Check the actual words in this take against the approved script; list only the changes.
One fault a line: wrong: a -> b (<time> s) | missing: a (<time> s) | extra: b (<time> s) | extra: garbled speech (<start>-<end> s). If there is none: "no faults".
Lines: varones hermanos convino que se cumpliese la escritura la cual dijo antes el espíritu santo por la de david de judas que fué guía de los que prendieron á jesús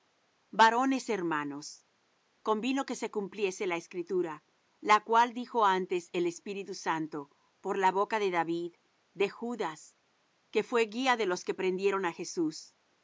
extra: boca (7.9 s)